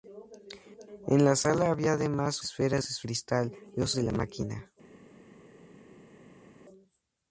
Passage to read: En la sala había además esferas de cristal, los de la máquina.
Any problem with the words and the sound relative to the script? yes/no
no